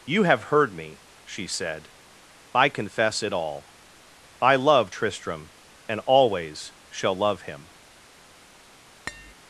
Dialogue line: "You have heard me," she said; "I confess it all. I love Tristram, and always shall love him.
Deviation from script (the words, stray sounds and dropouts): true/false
true